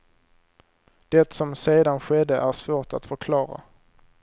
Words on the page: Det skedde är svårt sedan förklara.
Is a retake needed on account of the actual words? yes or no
yes